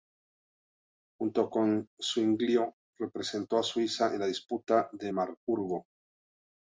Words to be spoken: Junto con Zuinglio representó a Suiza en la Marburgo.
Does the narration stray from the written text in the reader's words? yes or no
yes